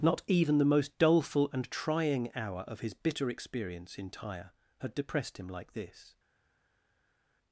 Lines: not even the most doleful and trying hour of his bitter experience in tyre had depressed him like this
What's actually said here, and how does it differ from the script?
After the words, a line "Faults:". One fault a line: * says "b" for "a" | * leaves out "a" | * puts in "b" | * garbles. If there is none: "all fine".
not even the most doleful and trying hour of his bitter experience in tyre had depressed him like this
Faults:
all fine